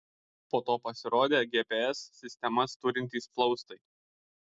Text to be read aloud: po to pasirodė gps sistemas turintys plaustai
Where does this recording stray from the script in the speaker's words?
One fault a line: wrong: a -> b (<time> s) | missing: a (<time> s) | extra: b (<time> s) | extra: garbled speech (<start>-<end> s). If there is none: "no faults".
no faults